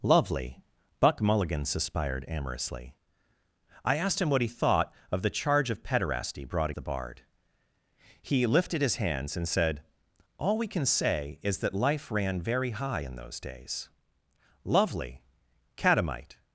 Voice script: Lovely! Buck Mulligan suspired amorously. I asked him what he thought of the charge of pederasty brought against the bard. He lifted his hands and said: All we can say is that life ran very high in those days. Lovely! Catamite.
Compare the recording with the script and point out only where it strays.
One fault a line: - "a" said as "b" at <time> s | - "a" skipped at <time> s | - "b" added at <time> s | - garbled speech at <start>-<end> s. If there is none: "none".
- "against" skipped at 6.7 s